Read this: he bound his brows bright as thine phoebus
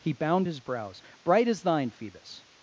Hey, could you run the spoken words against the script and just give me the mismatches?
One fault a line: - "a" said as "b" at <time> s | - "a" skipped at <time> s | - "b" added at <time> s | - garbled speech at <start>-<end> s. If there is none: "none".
none